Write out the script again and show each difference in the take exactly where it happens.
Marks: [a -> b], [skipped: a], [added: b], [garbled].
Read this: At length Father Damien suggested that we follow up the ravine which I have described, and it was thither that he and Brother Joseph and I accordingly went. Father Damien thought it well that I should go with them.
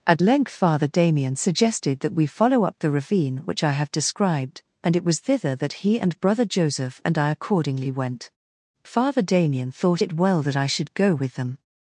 At length Father Damien suggested that we follow up the ravine which I have described, and it was thither that he and Brother Joseph and I accordingly went. Father Damien thought it well that I should go with them.